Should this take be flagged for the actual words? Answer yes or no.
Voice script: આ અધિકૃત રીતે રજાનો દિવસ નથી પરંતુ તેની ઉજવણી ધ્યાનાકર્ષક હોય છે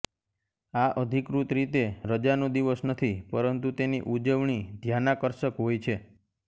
no